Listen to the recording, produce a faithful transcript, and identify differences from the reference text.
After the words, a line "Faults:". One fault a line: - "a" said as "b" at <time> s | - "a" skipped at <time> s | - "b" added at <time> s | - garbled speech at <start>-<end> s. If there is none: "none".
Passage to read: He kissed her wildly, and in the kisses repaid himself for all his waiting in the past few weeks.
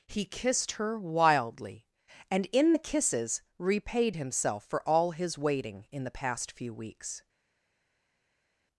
He kissed her wildly, and in the kisses repaid himself for all his waiting in the past few weeks.
Faults:
none